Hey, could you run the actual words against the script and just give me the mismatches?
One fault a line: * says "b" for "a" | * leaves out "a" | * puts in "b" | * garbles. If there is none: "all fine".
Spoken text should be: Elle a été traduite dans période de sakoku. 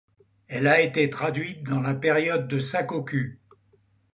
* puts in "la"